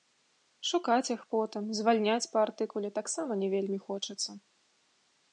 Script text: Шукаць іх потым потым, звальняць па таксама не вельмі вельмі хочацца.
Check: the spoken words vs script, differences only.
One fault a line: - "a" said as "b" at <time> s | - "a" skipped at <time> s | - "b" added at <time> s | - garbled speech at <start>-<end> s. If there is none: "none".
- "потым" skipped at 1.6 s
- "артыкуле" added at 2.5 s
- "вельмі" skipped at 3.8 s